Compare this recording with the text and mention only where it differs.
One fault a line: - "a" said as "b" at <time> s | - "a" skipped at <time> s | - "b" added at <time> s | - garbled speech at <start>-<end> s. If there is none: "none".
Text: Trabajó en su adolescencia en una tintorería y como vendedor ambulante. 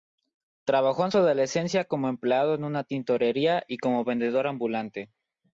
- "como empleado" added at 1.8 s